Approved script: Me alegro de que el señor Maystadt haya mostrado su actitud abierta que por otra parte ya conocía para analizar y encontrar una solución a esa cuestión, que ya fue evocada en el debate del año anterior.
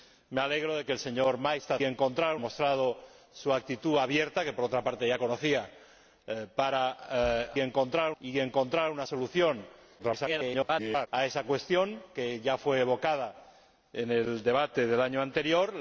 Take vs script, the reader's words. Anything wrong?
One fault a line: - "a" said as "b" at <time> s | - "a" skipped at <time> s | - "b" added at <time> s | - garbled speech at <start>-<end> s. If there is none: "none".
- "haya" said as "encontrar" at 1.8 s
- "analizar" said as "encontrar" at 7.6 s
- garbled speech at 10.0-11.1 s